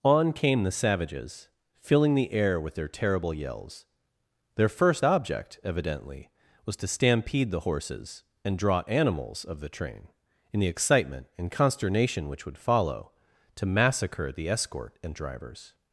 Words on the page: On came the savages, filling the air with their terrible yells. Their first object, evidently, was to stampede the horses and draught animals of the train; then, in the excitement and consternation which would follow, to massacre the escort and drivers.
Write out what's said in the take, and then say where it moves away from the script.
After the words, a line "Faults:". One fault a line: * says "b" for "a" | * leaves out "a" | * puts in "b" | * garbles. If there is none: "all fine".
On came the savages, filling the air with their terrible yells. Their first object, evidently, was to stampede the horses and draw animals of the train; in the excitement and consternation which would follow, to massacre the escort and drivers.
Faults:
* says "draw" for "draught"
* leaves out "then"